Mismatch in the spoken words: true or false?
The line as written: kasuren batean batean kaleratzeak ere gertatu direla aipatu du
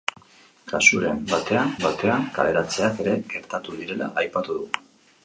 false